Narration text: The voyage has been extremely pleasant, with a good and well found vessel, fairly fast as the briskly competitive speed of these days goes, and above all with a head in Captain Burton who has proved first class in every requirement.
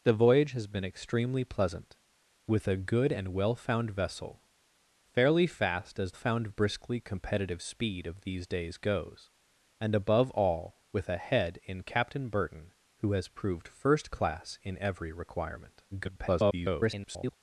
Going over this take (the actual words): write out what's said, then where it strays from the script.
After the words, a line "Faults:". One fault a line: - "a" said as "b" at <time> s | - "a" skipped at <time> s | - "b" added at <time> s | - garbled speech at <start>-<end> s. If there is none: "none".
The voyage has been extremely pleasant, with a good and well found vessel, fairly fast as found briskly competitive speed of these days goes, and above all with a head in Captain Burton who has proved first class in every requirement. [garbled]
Faults:
- "the" said as "found" at 6.1 s
- garbled speech at 15.9-17.3 s